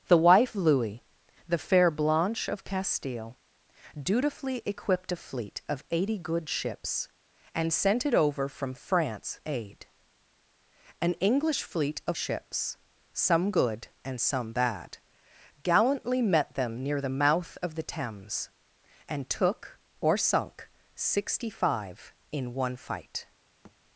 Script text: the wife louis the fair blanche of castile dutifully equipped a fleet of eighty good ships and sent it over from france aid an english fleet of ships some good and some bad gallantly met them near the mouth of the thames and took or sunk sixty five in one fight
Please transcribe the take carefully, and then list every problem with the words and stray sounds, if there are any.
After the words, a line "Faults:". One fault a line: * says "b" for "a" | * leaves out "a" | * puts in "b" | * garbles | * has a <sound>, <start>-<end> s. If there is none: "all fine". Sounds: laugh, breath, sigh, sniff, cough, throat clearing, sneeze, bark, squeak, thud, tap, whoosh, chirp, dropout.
the wife louis the fair blanche of castile dutifully equipped a fleet of eighty good ships and sent it over from france aid an english fleet of ships some good and some bad gallantly met them near the mouth of the thames and took or sunk sixty five in one fight
Faults:
* has a thud, 23.6-23.8 s